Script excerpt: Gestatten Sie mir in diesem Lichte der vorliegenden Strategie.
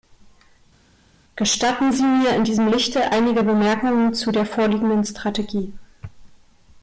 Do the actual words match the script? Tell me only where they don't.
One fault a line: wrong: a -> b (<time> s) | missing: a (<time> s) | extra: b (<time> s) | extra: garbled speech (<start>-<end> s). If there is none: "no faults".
extra: einige Bemerkungen zu (3.1 s)